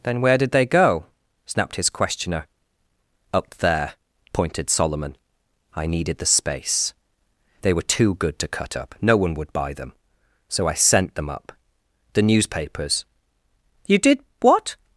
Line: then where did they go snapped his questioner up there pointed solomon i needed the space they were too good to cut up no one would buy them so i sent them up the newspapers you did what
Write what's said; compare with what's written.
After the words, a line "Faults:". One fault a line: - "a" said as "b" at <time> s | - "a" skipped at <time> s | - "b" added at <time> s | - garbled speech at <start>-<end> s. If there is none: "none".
then where did they go snapped his questioner up there pointed solomon i needed the space they were too good to cut up no one would buy them so i sent them up the newspapers you did what
Faults:
none